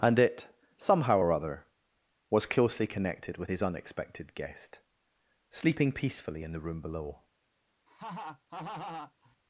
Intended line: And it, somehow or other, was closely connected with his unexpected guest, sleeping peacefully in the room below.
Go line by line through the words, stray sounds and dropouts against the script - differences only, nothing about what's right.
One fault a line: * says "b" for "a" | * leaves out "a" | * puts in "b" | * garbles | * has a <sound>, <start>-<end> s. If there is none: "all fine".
* has a laugh, 7.9-9.4 s